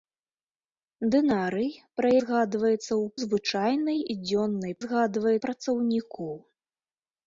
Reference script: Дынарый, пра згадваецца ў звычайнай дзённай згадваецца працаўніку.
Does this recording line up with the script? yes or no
yes